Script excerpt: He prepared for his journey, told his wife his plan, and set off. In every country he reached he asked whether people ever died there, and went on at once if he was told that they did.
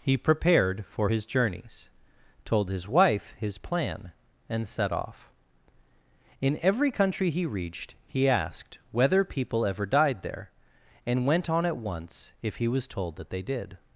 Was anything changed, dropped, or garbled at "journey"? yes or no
yes